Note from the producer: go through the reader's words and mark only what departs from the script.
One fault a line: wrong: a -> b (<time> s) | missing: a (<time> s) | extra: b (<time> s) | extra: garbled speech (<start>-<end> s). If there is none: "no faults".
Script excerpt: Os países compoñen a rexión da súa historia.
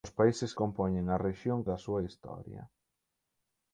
no faults